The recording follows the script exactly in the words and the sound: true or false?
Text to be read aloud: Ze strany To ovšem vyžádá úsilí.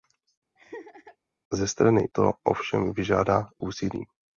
false